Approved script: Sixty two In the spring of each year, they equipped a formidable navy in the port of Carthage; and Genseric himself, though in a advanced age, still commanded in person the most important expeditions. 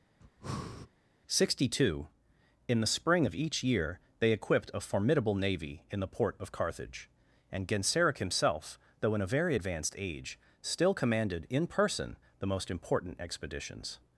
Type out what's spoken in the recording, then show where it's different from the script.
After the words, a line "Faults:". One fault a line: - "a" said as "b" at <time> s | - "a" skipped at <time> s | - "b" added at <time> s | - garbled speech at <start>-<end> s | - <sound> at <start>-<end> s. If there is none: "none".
Sixty two In the spring of each year, they equipped a formidable navy in the port of Carthage; and Genseric himself, though in a very advanced age, still commanded in person the most important expeditions.
Faults:
- breath at 0.2-0.9 s
- "very" added at 9.3 s